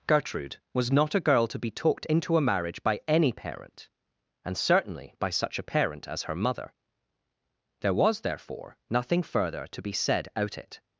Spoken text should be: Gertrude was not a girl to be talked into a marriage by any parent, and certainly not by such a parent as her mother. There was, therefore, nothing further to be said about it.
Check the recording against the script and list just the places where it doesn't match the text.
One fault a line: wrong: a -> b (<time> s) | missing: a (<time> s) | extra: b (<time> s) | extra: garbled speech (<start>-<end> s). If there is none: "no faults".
missing: not (5.1 s)
wrong: about -> out (10.4 s)